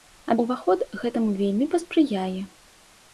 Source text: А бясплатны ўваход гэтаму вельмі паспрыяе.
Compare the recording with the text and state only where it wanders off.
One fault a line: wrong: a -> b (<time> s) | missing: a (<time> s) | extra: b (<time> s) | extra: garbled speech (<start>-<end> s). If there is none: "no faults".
missing: бясплатны (0.3 s)